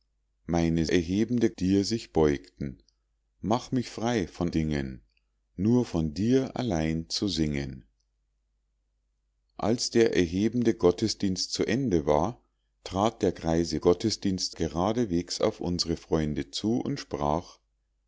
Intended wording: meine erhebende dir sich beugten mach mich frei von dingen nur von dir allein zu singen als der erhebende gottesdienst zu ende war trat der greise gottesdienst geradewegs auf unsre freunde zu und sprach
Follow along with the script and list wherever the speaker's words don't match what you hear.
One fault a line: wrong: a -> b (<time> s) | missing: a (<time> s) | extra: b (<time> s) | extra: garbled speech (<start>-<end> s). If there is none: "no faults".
no faults